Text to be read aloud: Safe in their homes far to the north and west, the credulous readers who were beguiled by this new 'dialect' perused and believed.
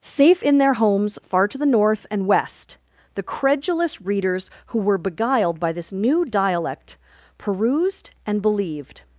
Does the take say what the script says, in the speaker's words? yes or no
yes